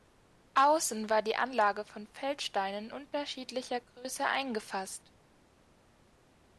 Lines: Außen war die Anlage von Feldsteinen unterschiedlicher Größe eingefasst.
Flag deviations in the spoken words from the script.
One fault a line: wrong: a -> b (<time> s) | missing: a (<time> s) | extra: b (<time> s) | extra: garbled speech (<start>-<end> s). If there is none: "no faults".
no faults